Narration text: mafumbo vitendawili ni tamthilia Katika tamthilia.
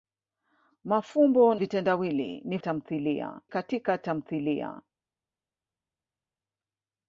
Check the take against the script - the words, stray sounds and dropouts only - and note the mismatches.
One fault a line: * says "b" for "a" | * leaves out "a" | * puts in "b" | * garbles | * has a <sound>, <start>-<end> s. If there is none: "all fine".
all fine